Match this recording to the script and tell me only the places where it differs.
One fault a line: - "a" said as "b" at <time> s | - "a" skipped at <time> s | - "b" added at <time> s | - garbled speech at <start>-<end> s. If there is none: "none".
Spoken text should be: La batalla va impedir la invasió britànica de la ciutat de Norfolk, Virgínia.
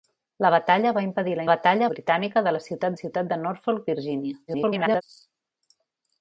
- "invasió" said as "batalla" at 1.5 s
- "ciutat" added at 3.0 s
- garbled speech at 4.5-5.0 s